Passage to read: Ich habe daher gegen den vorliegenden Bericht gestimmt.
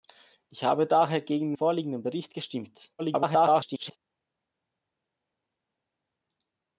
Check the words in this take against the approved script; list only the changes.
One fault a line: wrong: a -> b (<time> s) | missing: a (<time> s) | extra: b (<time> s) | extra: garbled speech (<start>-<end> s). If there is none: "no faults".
missing: den (1.5 s)
extra: garbled speech (3.0-4.0 s)